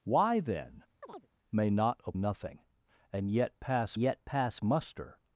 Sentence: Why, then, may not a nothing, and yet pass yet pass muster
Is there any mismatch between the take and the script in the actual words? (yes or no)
no